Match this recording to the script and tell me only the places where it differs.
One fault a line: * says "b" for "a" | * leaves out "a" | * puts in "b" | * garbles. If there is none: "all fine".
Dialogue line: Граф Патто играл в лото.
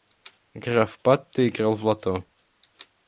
all fine